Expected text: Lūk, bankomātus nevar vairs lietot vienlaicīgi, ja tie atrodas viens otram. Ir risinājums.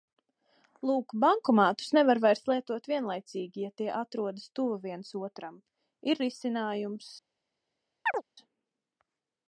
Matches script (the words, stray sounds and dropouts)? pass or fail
fail